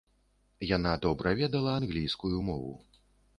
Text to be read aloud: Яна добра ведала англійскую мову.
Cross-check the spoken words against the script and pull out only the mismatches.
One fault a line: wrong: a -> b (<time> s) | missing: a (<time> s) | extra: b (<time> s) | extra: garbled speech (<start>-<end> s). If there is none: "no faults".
no faults